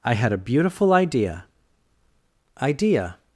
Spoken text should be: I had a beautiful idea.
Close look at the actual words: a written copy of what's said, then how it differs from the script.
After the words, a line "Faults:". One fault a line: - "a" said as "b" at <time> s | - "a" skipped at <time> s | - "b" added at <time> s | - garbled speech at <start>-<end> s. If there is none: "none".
I had a beautiful idea idea.
Faults:
- "idea" added at 2.6 s